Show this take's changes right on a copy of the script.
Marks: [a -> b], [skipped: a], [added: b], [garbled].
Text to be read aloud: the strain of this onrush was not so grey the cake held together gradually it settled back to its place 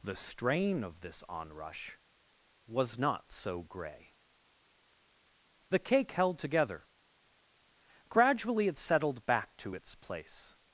the strain of this onrush was not so grey the cake held together gradually it settled back to its place